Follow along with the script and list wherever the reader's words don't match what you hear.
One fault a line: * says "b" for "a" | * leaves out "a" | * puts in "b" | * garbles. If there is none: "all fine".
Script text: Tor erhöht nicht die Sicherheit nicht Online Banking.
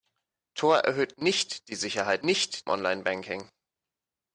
all fine